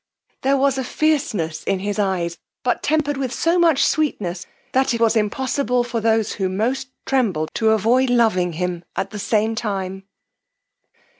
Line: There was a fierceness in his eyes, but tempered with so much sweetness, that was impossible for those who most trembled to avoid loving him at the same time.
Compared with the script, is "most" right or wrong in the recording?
right